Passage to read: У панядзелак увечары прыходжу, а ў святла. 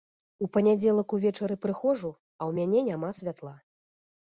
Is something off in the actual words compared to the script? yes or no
yes